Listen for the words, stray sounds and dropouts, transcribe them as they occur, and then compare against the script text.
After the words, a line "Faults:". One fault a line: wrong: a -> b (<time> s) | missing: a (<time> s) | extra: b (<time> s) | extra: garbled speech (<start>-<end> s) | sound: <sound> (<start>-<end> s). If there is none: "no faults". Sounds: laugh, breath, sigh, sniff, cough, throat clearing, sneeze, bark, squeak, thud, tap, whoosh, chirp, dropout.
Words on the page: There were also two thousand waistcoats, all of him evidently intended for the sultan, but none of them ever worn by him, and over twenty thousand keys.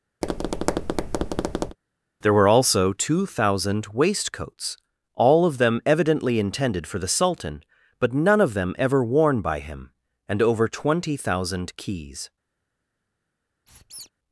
There were also two thousand waistcoats, all of them evidently intended for the sultan, but none of them ever worn by him, and over twenty thousand keys.
Faults:
sound: tap (0.2-1.8 s)
wrong: him -> them (5.6 s)
sound: squeak (13.7-14.1 s)